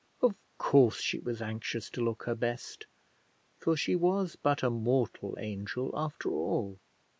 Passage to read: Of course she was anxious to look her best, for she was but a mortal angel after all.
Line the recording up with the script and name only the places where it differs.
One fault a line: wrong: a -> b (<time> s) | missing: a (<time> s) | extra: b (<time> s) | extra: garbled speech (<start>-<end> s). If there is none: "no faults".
no faults